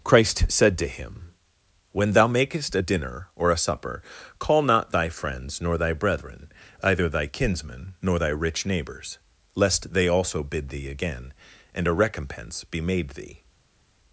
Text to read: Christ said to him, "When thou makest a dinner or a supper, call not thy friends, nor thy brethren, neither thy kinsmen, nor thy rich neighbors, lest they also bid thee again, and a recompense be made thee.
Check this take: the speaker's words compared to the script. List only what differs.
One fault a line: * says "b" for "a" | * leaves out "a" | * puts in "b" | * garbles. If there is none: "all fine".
* says "either" for "neither"